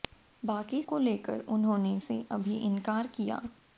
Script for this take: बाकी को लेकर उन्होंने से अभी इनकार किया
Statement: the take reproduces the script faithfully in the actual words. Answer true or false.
true